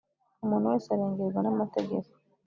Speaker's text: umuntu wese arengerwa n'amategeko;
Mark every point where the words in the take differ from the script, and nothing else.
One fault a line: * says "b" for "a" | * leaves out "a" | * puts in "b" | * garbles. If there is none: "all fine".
all fine